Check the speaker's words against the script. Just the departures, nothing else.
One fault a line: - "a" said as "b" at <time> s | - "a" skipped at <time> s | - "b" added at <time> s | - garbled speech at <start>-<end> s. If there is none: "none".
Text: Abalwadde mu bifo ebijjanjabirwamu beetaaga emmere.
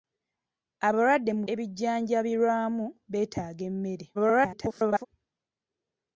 - "bifo" skipped at 1.4 s
- garbled speech at 4.1-5.1 s